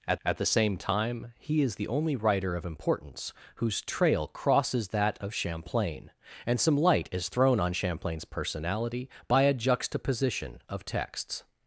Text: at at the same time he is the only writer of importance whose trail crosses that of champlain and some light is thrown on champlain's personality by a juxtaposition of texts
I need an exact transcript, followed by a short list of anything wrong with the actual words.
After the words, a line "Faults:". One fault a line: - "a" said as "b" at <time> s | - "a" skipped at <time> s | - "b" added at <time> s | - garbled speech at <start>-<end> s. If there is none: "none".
at at the same time he is the only writer of importance whose trail crosses that of champlain and some light is thrown on champlain's personality by a juxtaposition of texts
Faults:
none